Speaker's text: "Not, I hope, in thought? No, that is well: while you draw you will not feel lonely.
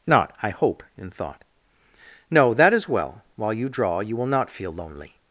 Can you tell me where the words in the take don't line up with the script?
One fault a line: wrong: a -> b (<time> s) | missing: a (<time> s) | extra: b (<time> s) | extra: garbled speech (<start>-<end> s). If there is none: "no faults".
no faults